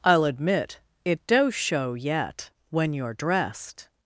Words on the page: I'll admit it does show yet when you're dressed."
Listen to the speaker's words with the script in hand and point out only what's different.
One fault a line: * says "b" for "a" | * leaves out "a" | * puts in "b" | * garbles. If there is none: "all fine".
all fine